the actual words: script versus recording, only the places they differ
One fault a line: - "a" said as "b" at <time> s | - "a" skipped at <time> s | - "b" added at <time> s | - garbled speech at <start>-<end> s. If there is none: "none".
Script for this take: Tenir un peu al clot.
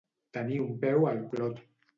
none